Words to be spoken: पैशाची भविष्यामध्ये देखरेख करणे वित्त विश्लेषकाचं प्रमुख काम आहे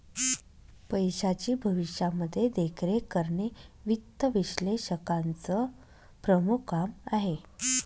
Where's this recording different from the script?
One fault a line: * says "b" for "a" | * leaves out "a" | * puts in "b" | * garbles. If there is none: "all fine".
all fine